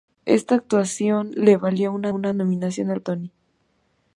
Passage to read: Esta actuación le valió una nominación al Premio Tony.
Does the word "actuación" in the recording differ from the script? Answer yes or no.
no